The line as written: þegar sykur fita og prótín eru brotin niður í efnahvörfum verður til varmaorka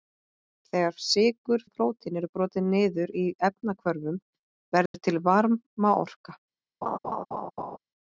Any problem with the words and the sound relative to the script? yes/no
yes